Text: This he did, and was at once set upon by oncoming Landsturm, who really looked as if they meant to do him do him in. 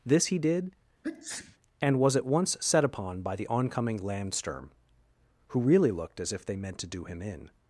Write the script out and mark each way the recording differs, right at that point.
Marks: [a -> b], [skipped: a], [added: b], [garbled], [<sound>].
This he did, [sneeze] and was at once set upon by [added: the] oncoming Landsturm, who really looked as if they meant to do him [skipped: do him] in.